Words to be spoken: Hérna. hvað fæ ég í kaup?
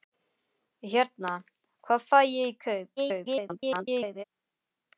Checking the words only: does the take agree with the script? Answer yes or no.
no